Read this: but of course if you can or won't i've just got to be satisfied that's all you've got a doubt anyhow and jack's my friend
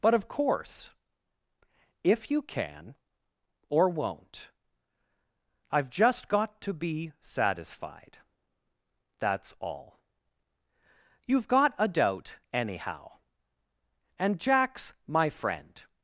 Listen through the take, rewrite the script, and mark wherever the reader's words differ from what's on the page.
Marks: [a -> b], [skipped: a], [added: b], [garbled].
but of course if you can or won't i've just got to be satisfied that's all you've got a doubt anyhow and jack's my friend